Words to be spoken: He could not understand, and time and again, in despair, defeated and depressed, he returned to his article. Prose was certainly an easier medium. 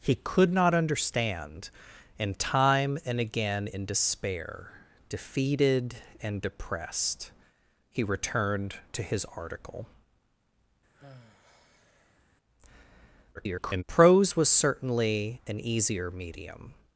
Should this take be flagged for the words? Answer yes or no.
yes